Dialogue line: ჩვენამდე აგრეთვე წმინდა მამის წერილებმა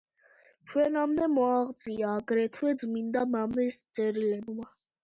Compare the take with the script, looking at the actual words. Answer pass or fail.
fail